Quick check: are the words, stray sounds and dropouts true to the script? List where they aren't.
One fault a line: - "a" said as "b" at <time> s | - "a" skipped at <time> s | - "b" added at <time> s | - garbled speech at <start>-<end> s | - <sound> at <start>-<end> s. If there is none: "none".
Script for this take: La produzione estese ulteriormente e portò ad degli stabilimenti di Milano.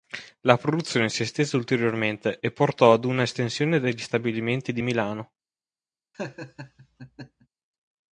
- "si" added at 1.1 s
- "una estensione" added at 3.0 s
- laugh at 6.1-7.5 s